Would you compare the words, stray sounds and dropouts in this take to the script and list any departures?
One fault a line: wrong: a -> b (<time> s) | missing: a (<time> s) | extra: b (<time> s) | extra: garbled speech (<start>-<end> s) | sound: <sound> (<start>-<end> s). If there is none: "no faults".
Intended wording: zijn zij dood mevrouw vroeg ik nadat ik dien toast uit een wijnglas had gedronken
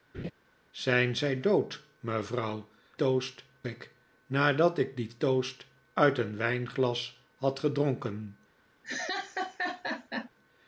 sound: laugh (0.1-0.3 s)
wrong: vroeg -> toast (3.0 s)
sound: laugh (8.8-10.3 s)